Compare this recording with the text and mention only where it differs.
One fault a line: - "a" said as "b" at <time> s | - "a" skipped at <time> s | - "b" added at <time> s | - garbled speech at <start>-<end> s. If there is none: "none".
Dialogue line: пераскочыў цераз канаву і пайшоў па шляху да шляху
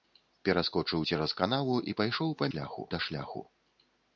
none